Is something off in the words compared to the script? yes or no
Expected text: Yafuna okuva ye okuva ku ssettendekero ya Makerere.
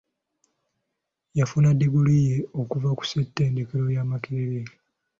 yes